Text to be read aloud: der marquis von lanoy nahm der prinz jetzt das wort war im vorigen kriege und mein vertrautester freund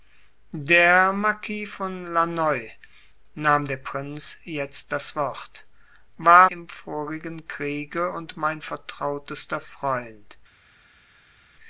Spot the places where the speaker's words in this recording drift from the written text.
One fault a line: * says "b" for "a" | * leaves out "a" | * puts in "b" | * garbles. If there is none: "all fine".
all fine